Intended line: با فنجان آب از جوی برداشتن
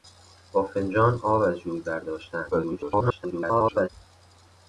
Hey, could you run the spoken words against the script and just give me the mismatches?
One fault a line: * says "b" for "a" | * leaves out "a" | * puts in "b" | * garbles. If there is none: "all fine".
* garbles